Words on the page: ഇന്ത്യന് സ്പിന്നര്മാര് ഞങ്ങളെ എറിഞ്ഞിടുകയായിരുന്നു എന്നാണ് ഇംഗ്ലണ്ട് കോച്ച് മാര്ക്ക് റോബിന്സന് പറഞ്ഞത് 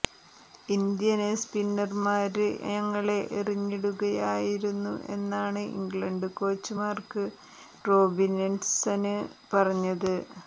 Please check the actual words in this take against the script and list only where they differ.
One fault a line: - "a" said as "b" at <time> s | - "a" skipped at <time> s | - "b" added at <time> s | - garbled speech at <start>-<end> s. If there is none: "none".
none